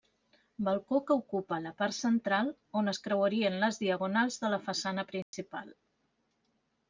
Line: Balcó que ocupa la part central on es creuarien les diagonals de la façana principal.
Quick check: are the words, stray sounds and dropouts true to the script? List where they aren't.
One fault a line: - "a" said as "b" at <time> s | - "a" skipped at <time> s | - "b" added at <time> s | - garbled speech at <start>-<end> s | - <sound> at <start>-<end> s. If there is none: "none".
- dropout at 5.2-5.3 s